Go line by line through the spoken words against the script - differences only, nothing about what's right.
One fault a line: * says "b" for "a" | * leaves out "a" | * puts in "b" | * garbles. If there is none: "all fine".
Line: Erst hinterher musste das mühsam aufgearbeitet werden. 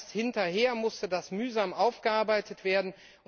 all fine